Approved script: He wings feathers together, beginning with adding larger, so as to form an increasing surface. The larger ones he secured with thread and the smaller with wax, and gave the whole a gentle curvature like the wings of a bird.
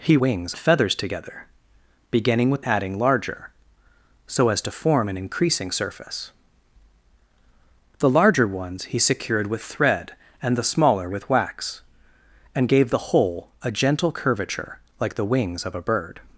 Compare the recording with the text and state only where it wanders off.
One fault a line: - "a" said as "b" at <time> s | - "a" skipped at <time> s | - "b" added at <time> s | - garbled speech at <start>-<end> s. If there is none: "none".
none